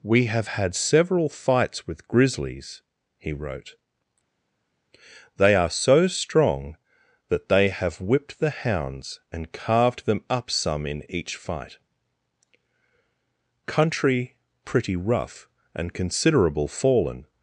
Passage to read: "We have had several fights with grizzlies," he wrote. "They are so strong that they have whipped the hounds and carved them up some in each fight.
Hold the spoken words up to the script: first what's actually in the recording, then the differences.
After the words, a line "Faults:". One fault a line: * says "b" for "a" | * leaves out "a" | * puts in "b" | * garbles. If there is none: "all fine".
"We have had several fights with grizzlies," he wrote. "They are so strong that they have whipped the hounds and carved them up some in each fight. Country pretty rough and considerable fallen
Faults:
* puts in "Country pretty rough and considerable fallen"